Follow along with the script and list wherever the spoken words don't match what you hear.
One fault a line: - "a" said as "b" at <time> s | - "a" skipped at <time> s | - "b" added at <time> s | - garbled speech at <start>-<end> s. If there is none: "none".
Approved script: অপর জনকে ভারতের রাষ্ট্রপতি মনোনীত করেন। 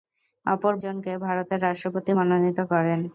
none